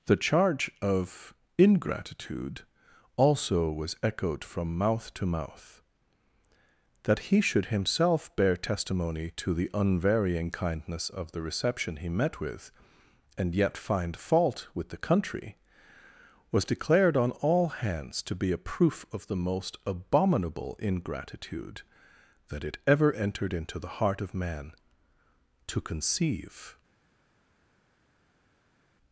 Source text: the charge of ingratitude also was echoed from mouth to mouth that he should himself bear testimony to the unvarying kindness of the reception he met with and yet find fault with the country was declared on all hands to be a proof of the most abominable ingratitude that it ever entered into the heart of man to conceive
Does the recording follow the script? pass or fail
pass